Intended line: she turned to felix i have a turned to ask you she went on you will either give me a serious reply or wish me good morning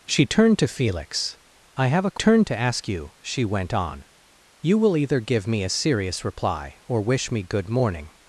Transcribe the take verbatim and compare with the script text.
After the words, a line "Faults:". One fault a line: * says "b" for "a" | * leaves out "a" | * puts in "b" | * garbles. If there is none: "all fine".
she turned to felix i have a turned to ask you she went on you will either give me a serious reply or wish me good morning
Faults:
all fine